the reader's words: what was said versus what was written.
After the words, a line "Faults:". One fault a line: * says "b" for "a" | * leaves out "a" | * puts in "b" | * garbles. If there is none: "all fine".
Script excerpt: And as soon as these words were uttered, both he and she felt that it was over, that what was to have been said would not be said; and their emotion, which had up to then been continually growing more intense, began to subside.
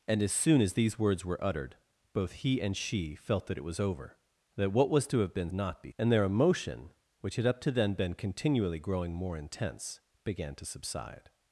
And as soon as these words were uttered, both he and she felt that it was over, that what was to have been not be; and their emotion, which had up to then been continually growing more intense, began to subside.
Faults:
* leaves out "said would"
* leaves out "said"